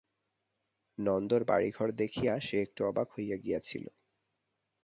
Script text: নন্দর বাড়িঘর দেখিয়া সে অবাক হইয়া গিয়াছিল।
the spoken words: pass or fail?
fail